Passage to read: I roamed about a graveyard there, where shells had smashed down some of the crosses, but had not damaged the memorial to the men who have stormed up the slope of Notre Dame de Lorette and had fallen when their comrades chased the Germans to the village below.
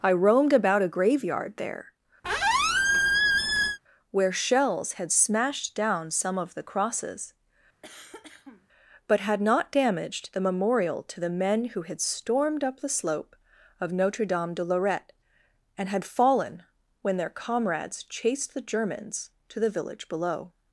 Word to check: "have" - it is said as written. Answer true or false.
false